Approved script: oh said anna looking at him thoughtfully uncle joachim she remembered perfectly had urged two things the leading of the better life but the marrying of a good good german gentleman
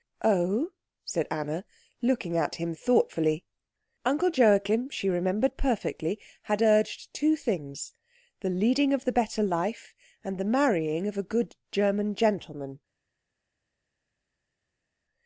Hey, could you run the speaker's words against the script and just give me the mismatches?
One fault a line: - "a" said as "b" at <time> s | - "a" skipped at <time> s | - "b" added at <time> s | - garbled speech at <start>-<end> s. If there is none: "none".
- "but" said as "and" at 10.2 s
- "good" skipped at 11.6 s